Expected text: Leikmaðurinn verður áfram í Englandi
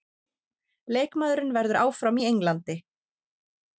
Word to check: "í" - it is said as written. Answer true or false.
true